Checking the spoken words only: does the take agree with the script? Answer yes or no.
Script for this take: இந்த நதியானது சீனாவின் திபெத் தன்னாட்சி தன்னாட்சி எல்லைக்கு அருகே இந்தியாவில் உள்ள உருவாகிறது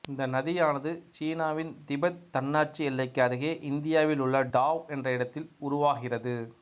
no